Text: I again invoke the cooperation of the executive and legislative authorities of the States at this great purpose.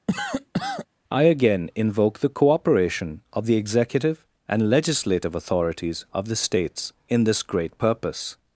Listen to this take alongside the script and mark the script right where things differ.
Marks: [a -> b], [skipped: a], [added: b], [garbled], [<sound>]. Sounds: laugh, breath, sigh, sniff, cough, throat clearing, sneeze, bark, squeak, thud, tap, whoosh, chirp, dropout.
[cough] I again invoke the cooperation of the executive and legislative authorities of the States [at -> in] this great purpose.